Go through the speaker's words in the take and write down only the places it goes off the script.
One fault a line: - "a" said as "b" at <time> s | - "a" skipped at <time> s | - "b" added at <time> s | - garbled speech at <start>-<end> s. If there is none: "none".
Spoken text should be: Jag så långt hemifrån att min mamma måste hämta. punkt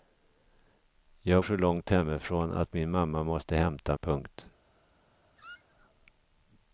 none